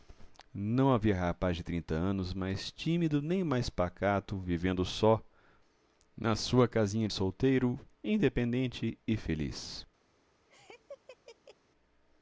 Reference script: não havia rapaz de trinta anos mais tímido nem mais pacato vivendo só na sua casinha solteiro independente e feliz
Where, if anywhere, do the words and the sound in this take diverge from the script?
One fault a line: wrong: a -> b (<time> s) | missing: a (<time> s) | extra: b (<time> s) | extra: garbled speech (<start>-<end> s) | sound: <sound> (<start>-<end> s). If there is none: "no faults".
sound: laugh (10.5-11.6 s)